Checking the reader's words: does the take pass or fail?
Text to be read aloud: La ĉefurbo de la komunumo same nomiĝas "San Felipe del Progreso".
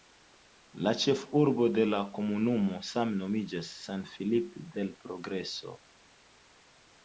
pass